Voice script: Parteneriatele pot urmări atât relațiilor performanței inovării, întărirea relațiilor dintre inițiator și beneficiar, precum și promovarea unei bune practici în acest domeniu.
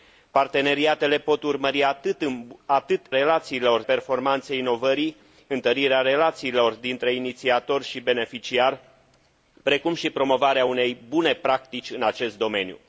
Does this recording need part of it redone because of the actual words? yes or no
no